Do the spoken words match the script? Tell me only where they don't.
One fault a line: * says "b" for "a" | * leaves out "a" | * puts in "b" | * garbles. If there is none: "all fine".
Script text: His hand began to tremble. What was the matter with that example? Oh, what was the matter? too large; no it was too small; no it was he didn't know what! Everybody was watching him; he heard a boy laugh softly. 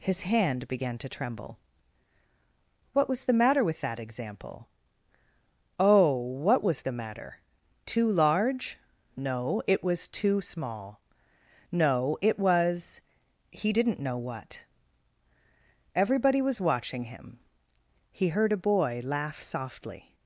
all fine